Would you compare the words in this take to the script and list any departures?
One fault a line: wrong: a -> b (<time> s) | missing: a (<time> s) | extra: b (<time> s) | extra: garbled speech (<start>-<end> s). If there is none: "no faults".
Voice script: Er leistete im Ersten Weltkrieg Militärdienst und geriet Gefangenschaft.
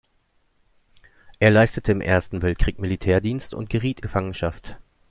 no faults